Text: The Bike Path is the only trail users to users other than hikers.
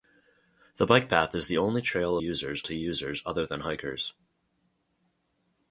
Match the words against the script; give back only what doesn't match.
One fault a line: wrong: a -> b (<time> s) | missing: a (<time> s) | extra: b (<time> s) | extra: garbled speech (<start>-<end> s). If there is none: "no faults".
no faults